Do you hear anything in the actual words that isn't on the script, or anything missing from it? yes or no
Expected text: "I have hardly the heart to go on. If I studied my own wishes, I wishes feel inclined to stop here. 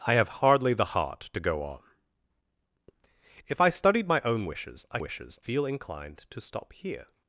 no